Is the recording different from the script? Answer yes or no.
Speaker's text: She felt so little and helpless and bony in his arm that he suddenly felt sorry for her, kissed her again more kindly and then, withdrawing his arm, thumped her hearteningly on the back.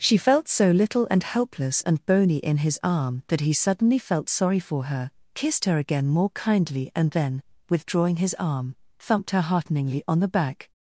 no